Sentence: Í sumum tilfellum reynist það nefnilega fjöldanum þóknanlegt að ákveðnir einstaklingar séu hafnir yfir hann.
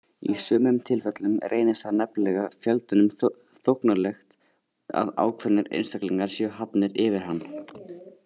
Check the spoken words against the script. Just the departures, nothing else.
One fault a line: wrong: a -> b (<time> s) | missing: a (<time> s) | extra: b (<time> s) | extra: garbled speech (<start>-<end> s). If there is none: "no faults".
no faults